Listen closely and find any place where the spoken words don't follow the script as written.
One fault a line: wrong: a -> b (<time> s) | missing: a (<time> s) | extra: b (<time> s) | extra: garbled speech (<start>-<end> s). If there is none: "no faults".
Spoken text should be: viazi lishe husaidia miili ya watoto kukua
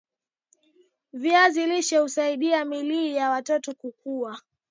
no faults